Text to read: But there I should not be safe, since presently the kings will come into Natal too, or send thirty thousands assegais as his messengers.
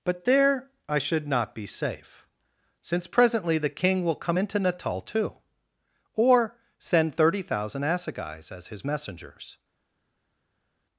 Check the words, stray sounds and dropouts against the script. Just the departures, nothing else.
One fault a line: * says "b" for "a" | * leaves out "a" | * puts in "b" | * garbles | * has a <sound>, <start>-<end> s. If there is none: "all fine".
* says "king" for "kings"
* says "thousand" for "thousands"